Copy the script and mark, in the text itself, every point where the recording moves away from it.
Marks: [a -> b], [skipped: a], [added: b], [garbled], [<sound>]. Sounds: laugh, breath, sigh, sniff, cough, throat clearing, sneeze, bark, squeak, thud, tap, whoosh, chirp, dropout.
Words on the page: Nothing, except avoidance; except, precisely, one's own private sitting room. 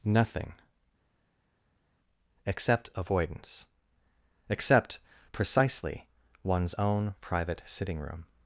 Nothing, except avoidance; except, precisely, one's own private sitting room.